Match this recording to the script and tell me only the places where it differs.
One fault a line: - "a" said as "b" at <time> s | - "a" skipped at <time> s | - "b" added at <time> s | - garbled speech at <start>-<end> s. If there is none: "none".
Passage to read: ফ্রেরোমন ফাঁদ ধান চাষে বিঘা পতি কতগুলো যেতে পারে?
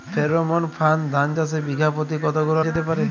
none